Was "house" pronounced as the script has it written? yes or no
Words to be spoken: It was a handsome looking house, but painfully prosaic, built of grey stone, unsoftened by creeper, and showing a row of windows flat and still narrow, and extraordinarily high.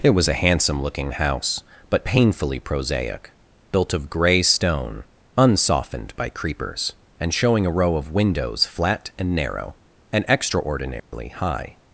yes